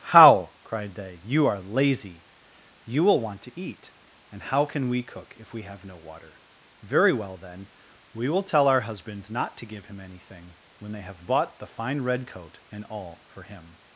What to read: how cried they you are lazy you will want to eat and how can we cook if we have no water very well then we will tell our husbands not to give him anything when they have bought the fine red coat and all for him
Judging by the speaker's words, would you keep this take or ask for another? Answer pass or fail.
pass